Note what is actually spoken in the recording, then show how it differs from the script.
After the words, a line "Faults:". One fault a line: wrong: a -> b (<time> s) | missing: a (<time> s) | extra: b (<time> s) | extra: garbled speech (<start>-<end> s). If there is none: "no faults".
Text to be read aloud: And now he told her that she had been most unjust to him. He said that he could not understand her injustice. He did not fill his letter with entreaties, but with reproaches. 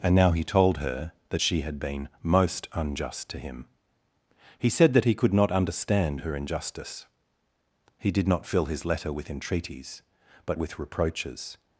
And now he told her that she had been most unjust to him. He said that he could not understand her injustice. He did not fill his letter with entreaties, but with reproaches.
Faults:
no faults